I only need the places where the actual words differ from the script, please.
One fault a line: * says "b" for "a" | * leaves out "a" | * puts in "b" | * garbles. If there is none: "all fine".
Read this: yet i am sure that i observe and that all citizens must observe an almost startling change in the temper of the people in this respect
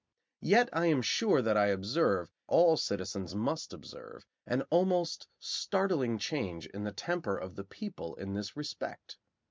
* leaves out "and that"